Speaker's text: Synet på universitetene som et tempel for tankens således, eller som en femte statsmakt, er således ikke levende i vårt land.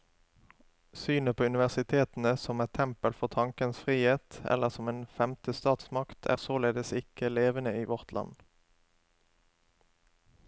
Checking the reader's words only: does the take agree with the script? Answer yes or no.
no